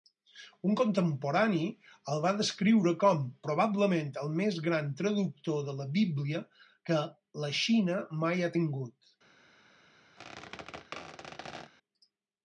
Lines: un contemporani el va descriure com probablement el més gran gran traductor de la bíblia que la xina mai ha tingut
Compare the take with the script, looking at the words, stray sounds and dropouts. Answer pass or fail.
fail